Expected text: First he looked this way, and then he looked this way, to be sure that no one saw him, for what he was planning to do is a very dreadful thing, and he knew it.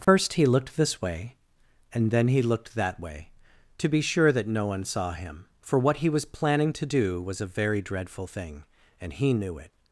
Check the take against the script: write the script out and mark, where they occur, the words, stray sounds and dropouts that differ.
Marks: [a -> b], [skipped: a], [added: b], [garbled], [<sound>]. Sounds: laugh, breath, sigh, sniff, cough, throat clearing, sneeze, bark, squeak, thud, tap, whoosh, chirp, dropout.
First [dropout] he looked this way, and then he looked [this -> that] way, to be sure that no one saw him, for what he was planning to do [is -> was] a very dreadful thing, and he knew it.